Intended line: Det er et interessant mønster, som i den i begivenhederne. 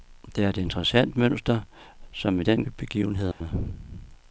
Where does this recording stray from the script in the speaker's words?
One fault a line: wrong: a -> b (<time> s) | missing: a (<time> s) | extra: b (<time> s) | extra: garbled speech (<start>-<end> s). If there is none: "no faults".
no faults